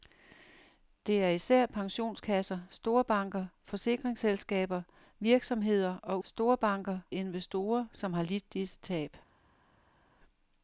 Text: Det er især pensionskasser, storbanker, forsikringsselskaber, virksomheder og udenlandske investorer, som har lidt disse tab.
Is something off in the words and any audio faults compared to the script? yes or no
yes